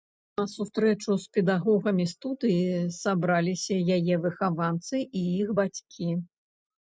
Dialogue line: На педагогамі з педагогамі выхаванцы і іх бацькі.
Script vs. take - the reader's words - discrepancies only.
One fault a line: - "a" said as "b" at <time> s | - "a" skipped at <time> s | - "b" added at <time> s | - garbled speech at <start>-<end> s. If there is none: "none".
- "педагогамі" said as "сустрэчу" at 0.5 s
- "студыі сабраліся яе" added at 2.1 s